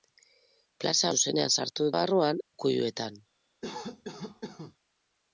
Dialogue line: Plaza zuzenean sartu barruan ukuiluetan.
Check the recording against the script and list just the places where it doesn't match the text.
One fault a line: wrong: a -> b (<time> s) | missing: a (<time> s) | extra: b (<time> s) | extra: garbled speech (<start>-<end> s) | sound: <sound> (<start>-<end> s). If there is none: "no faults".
sound: cough (3.6-4.8 s)